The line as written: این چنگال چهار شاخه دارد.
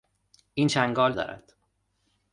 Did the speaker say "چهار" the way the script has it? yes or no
no